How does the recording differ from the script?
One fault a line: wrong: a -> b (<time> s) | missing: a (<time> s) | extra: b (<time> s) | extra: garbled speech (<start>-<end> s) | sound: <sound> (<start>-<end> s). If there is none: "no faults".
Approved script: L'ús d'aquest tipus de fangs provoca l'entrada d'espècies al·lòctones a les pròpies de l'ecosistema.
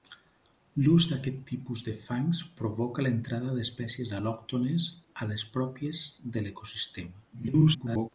extra: garbled speech (7.3-8.1 s)